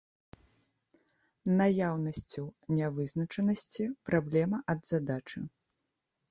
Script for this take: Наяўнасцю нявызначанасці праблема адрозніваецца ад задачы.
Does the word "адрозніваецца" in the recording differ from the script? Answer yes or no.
yes